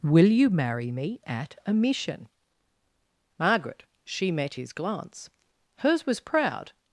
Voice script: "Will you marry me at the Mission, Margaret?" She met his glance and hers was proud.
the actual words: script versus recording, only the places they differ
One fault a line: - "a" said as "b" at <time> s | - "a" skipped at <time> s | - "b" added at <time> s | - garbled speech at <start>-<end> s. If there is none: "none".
- "the" said as "a" at 1.6 s
- "and" skipped at 5.3 s